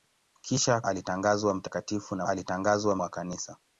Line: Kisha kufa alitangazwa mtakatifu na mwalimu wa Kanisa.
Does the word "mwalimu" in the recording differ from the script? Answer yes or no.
yes